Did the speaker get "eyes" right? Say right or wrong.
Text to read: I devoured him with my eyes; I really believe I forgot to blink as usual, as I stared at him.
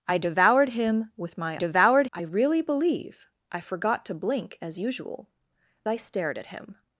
wrong